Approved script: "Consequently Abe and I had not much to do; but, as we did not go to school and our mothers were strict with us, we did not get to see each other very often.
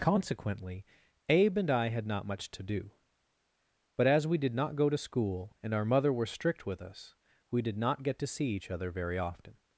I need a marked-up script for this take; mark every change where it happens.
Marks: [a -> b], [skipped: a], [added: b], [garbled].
"Consequently Abe and I had not much to do; but, as we did not go to school and our [mothers -> mother] were strict with us, we did not get to see each other very often.